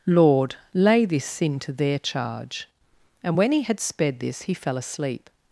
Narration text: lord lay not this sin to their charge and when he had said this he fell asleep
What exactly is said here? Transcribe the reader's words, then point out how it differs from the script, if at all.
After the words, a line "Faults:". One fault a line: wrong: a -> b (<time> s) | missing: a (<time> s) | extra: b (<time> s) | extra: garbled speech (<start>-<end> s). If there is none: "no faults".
lord lay this sin to their charge and when he had sped this he fell asleep
Faults:
missing: not (1.1 s)
wrong: said -> sped (3.8 s)